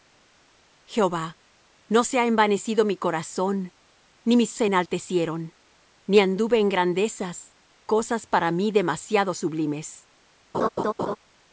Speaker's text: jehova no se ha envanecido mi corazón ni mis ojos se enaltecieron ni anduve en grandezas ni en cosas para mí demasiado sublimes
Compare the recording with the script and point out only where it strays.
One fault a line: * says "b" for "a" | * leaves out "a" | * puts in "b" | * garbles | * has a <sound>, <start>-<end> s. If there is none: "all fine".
* leaves out "ojos"
* leaves out "ni en"
* has a laugh, 10.5-11.2 s